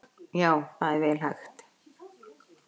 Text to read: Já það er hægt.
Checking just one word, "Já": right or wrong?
right